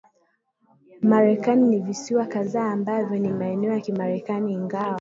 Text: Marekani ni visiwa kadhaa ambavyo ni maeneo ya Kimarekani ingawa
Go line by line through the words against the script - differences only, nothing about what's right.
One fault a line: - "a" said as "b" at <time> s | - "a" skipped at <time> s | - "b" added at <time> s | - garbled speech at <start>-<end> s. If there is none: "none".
none